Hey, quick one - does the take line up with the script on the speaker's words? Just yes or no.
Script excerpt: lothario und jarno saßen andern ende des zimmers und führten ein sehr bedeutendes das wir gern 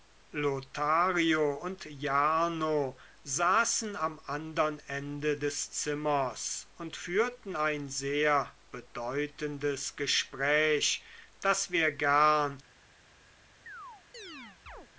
no